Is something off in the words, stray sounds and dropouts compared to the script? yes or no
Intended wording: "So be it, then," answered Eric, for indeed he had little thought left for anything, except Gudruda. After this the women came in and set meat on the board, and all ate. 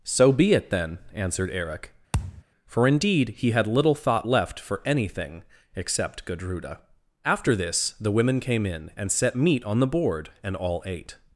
yes